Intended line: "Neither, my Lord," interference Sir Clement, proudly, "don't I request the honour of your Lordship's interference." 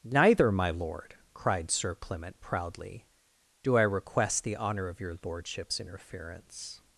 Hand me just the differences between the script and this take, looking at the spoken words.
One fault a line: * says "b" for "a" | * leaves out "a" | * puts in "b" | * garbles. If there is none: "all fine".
* says "cried" for "interference"
* says "do" for "don't"